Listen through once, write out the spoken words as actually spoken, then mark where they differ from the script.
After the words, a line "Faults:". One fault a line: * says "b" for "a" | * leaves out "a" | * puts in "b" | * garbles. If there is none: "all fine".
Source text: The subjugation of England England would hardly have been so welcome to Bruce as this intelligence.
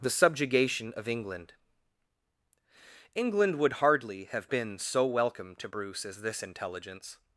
The subjugation of England England would hardly have been so welcome to Bruce as this intelligence.
Faults:
all fine